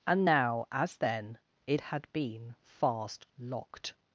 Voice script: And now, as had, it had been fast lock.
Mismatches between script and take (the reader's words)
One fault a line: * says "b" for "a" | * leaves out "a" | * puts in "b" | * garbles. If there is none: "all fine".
* says "then" for "had"
* says "locked" for "lock"